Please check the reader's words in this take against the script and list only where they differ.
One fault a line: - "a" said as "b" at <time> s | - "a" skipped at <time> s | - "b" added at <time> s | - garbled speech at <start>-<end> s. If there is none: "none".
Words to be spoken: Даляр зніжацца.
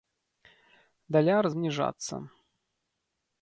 none